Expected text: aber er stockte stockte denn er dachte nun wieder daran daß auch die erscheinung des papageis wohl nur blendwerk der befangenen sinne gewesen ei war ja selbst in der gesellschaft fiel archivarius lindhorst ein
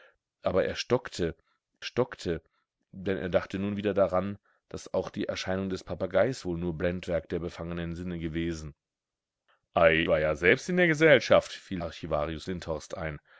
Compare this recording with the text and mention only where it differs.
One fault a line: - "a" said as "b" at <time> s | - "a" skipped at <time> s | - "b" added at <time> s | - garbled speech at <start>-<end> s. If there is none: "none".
none